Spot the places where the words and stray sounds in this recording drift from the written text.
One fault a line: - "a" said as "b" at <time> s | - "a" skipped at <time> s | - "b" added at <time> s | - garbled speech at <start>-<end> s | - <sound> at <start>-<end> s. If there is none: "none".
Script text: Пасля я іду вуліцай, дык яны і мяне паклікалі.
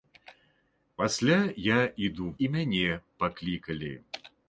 - "вуліцай дык яны" skipped at 2.3 s